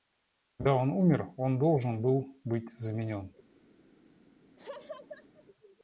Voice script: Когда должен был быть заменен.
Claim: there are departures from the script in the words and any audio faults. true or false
true